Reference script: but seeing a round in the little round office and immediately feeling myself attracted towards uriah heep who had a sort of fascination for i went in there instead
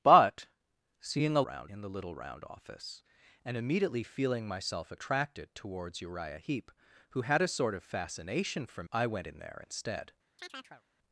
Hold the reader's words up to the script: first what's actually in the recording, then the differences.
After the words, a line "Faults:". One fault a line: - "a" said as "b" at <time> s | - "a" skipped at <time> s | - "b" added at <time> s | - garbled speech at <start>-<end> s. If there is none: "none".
but seeing a round in the little round office and immediately feeling myself attracted towards uriah heep who had a sort of fascination for i went in there instead
Faults:
none